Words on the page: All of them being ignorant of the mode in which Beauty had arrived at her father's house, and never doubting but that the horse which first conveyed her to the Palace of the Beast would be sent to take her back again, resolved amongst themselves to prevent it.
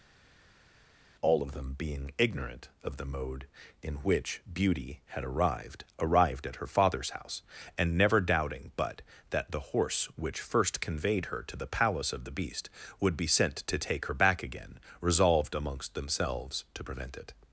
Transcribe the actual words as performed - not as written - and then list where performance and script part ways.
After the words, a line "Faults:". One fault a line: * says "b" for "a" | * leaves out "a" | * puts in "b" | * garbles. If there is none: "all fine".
All of them being ignorant of the mode in which Beauty had arrived arrived at her father's house, and never doubting but that the horse which first conveyed her to the Palace of the Beast would be sent to take her back again, resolved amongst themselves to prevent it.
Faults:
* puts in "arrived"